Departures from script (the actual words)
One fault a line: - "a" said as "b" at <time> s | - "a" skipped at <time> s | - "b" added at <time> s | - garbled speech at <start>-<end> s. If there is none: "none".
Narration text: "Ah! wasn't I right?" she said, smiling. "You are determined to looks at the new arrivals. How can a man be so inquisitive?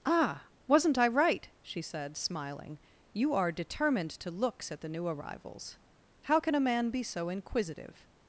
none